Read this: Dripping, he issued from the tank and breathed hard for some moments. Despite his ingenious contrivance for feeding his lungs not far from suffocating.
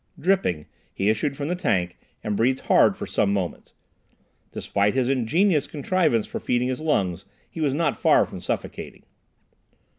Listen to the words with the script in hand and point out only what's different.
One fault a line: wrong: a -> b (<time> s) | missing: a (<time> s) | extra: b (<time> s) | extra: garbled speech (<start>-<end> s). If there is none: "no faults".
extra: he was (7.5 s)